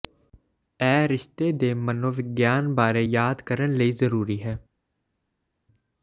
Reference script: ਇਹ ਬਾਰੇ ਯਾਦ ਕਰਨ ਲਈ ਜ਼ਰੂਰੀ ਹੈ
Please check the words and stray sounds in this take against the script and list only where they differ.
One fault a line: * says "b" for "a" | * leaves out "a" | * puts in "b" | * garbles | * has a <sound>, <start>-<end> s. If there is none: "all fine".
* puts in "ਰਿਸ਼ਤੇ ਦੇ ਮਨੋਵਿਗਿਆਨ"